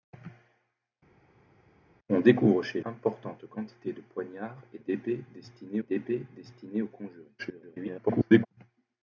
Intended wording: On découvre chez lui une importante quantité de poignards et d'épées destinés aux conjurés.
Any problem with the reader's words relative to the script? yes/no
yes